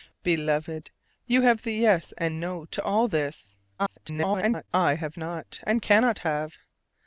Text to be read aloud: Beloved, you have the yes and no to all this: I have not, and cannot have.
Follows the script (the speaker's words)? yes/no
no